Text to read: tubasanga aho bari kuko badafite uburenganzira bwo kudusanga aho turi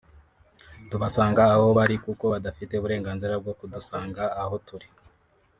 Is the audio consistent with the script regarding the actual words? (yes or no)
yes